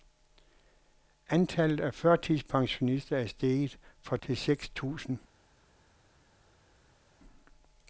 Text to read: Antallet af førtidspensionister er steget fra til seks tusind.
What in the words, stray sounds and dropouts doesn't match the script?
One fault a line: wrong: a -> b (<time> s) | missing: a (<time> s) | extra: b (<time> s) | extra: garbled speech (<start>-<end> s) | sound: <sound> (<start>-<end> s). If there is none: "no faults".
no faults